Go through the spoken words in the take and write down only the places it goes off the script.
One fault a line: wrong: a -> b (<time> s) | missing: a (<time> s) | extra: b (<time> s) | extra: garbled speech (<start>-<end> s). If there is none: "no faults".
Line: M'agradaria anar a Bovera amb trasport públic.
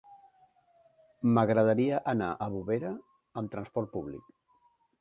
no faults